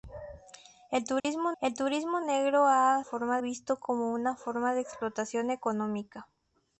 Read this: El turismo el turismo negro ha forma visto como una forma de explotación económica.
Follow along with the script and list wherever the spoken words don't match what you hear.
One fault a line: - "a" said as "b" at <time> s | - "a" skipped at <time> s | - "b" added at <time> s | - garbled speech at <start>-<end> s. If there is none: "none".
none